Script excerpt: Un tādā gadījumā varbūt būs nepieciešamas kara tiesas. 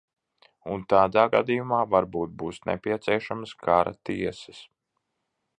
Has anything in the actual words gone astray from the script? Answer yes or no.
no